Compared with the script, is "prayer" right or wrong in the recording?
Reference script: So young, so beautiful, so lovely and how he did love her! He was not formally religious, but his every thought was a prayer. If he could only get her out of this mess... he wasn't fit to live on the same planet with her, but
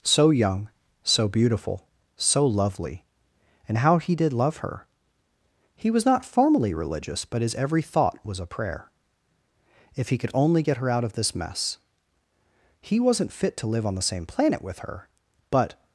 right